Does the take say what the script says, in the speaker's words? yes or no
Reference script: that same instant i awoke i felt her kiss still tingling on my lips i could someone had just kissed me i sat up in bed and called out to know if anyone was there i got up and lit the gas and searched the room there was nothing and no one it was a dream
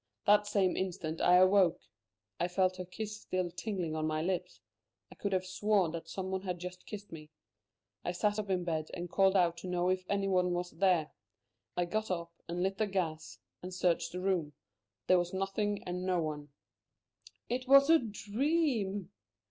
no